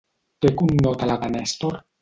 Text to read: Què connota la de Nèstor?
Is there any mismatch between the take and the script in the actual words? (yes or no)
no